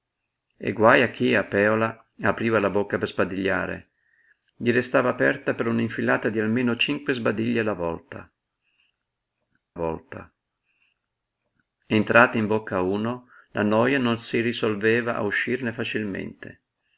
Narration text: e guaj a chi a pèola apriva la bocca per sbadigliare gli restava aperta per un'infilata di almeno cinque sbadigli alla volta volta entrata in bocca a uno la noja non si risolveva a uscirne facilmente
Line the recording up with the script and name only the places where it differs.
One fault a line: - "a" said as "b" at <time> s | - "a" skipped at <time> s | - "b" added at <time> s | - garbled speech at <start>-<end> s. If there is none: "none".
none